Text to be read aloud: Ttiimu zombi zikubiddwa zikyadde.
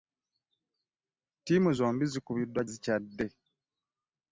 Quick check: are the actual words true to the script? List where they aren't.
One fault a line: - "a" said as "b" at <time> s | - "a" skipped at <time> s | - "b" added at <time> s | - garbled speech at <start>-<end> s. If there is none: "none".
none